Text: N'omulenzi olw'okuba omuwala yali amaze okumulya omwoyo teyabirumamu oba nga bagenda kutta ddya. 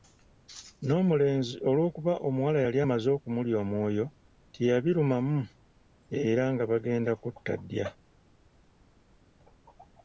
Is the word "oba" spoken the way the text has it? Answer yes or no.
no